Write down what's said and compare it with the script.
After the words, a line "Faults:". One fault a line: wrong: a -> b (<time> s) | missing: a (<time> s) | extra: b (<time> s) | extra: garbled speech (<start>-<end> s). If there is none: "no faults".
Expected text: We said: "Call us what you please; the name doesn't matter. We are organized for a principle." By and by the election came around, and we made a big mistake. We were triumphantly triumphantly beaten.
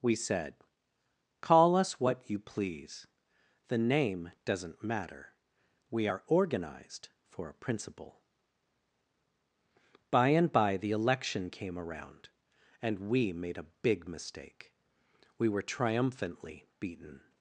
We said: "Call us what you please; the name doesn't matter. We are organized for a principle." By and by the election came around, and we made a big mistake. We were triumphantly beaten.
Faults:
missing: triumphantly (16.7 s)